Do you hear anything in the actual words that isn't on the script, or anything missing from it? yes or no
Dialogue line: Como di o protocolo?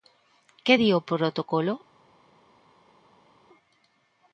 yes